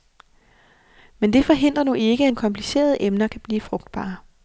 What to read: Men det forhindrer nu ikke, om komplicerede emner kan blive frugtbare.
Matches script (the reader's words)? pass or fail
pass